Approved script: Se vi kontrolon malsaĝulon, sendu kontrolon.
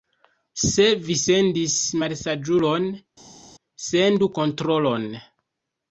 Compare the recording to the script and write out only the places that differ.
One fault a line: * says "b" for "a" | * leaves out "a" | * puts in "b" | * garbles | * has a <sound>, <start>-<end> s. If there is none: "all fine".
* says "sendis" for "kontrolon"